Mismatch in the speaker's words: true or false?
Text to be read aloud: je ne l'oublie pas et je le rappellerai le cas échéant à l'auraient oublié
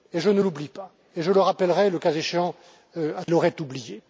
false